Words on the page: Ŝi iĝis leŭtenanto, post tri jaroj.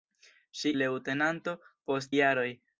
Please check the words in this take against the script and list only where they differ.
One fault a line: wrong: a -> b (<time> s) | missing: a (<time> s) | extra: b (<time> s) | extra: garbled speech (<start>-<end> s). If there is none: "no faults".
missing: iĝis (0.7 s)
missing: tri (2.1 s)